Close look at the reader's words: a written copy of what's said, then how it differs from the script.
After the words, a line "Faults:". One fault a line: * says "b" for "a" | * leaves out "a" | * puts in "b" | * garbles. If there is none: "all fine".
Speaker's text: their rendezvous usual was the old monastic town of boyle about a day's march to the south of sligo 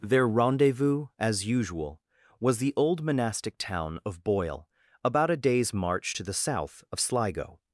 their rendezvous as usual was the old monastic town of boyle about a day's march to the south of sligo
Faults:
* puts in "as"